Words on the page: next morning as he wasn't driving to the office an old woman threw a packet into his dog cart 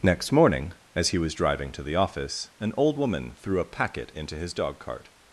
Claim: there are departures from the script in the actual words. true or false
true